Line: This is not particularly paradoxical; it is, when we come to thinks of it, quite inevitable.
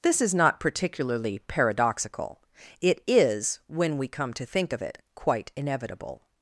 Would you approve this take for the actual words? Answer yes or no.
no